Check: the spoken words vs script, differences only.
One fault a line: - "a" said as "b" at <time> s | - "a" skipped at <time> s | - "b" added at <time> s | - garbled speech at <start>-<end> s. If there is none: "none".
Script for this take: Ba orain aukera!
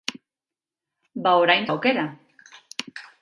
none